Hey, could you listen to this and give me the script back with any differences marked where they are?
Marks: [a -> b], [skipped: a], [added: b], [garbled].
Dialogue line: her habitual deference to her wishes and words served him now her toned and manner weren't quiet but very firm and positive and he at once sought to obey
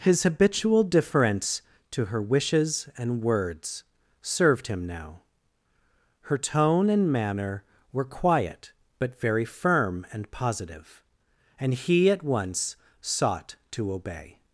[her -> his] habitual deference to her wishes and words served him now her [toned -> tone] and manner [weren't -> were] quiet but very firm and positive and he at once sought to obey